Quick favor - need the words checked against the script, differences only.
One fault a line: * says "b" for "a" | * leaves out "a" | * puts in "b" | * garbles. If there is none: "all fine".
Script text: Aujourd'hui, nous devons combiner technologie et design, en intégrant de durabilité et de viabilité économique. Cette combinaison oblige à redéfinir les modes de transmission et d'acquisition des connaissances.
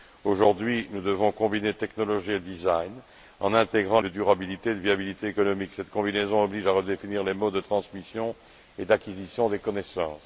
all fine